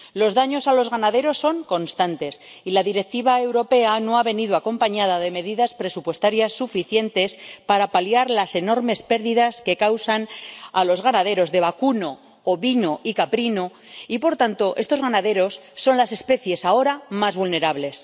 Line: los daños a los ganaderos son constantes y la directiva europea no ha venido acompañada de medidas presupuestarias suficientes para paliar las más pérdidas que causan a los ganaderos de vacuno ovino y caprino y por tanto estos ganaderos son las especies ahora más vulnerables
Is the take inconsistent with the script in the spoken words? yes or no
yes